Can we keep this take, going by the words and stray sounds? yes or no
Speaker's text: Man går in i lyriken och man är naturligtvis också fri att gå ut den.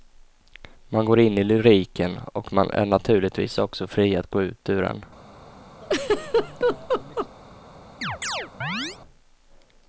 no